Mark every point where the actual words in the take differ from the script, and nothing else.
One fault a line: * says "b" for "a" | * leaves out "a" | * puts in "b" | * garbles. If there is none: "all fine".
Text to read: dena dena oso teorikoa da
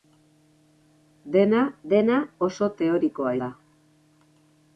all fine